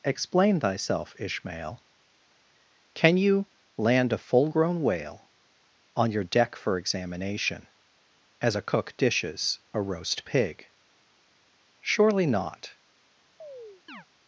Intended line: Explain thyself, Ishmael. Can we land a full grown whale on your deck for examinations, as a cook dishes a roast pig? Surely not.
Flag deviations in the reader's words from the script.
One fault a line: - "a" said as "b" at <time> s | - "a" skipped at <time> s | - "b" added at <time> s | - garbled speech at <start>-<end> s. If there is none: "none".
- "we" said as "you" at 3.2 s
- "examinations" said as "examination" at 6.8 s